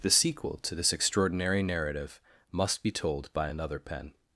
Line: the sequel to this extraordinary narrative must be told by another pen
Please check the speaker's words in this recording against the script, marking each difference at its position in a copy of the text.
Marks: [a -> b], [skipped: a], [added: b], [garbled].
the sequel to this extraordinary narrative must be told by another pen